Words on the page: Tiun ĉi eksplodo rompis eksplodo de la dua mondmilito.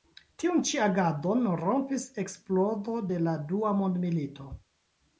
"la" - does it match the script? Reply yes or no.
yes